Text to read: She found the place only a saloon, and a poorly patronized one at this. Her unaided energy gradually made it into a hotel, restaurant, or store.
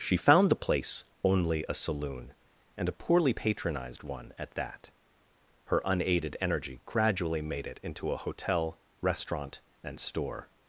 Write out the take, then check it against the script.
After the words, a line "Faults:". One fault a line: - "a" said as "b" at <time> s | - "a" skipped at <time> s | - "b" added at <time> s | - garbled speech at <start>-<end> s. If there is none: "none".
She found the place only a saloon, and a poorly patronized one at that. Her unaided energy gradually made it into a hotel, restaurant, and store.
Faults:
- "this" said as "that" at 4.5 s
- "or" said as "and" at 9.8 s